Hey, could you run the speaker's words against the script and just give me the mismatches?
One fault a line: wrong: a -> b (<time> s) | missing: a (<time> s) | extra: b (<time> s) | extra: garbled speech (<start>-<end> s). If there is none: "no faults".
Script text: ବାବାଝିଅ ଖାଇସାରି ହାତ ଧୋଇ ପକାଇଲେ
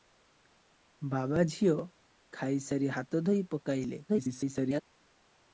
extra: garbled speech (4.1-4.8 s)